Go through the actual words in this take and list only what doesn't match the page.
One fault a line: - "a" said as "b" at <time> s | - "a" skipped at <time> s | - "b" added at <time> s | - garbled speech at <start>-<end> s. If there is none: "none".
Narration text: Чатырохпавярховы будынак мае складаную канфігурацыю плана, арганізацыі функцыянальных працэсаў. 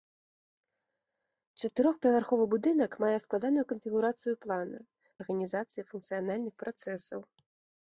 none